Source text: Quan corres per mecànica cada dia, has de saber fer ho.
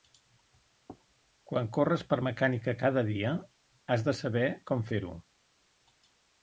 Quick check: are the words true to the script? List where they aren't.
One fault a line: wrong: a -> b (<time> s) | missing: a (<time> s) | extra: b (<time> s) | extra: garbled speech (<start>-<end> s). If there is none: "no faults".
extra: com (4.7 s)